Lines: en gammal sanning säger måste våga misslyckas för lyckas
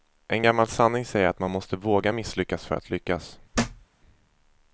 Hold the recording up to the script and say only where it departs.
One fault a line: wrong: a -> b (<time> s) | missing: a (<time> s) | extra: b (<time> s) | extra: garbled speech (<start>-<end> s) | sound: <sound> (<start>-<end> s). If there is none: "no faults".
extra: att man (1.3 s)
extra: att (2.7 s)
sound: thud (3.5-3.9 s)